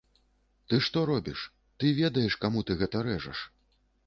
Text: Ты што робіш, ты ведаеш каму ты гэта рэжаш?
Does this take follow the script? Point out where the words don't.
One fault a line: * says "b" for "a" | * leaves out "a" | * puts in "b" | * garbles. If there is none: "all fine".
all fine